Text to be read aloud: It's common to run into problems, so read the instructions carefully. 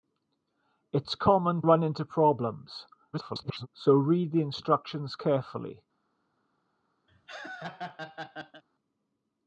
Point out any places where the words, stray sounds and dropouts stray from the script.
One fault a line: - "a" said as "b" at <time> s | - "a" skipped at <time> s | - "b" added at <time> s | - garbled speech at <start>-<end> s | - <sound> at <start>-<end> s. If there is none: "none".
- "to" skipped at 1.6 s
- garbled speech at 3.1-3.7 s
- laugh at 7.1-8.6 s